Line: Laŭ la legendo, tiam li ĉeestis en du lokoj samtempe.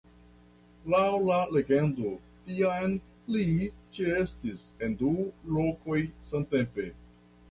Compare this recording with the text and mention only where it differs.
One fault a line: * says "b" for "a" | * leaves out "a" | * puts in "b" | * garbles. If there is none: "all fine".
all fine